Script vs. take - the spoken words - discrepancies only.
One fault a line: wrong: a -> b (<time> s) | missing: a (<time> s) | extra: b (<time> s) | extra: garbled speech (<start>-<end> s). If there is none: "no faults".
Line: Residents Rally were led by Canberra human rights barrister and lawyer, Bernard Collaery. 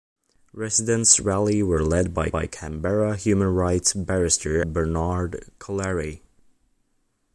extra: by (2.3 s)
missing: and lawyer (4.6 s)